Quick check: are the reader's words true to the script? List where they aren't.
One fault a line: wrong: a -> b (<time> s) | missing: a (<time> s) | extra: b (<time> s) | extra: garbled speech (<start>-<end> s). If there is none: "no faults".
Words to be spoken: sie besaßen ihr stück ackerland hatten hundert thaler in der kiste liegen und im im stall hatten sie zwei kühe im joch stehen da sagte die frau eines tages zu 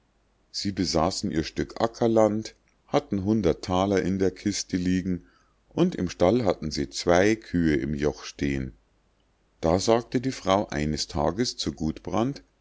missing: im (6.1 s)